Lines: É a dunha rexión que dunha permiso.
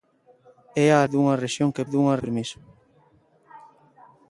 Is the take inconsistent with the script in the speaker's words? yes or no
no